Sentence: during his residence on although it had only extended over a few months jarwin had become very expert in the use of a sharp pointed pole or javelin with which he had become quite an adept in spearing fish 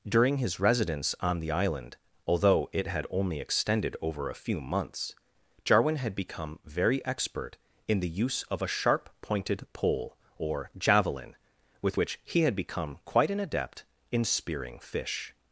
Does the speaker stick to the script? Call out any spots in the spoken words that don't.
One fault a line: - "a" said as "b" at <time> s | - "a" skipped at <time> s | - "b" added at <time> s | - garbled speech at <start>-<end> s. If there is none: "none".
- "the island" added at 1.4 s